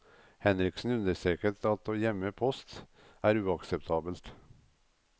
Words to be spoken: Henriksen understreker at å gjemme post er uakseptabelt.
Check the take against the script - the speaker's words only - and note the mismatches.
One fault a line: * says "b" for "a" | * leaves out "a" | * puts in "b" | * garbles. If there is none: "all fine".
all fine